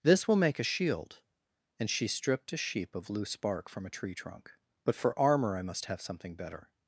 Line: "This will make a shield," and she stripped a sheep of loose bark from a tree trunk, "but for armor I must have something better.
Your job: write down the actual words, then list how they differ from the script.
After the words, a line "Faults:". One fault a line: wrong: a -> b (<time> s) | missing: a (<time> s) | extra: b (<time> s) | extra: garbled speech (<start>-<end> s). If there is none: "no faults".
"This will make a shield," and she stripped a sheep of loose bark from a tree trunk, "but for armor I must have something better.
Faults:
no faults